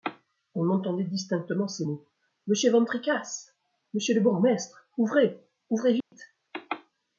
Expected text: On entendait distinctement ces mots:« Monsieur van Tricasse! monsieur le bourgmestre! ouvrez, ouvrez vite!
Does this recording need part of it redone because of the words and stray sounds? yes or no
yes